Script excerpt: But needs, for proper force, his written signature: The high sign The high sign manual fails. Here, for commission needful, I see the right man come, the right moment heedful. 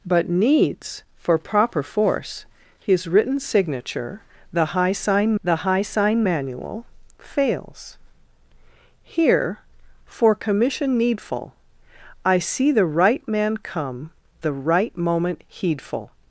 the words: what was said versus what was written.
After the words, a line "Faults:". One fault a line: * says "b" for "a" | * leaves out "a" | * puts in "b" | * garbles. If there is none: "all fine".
But needs, for proper force, his written signature: The high sign The high sign manual fails. Here, for commission needful, I see the right man come, the right moment heedful.
Faults:
all fine